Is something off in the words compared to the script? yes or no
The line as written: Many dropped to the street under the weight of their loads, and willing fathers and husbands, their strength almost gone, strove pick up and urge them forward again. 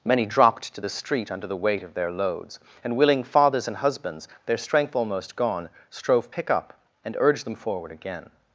no